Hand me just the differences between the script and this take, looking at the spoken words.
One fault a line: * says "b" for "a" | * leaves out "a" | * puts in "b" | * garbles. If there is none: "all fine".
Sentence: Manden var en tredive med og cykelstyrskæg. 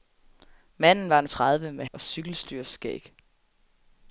all fine